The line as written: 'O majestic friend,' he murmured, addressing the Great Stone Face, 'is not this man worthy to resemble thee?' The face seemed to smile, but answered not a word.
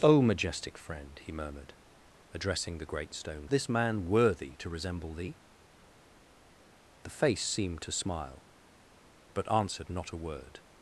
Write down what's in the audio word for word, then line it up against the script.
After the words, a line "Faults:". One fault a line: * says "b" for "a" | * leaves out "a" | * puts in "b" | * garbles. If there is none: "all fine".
'O majestic friend,' he murmured, addressing the Great Stone This man worthy to resemble thee?' The face seemed to smile, but answered not a word.
Faults:
* leaves out "Face is not"